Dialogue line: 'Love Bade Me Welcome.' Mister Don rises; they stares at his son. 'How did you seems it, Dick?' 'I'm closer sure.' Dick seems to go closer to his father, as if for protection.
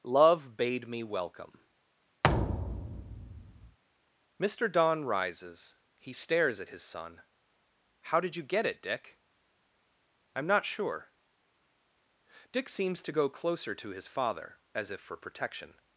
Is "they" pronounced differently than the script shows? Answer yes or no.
yes